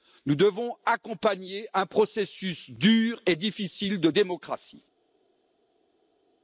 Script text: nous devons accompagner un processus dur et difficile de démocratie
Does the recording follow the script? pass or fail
pass